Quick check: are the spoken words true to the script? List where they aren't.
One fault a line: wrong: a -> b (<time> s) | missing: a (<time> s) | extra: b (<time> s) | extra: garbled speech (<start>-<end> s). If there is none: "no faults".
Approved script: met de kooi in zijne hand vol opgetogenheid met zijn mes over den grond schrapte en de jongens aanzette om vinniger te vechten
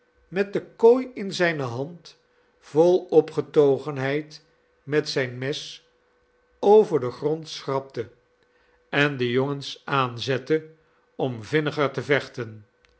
no faults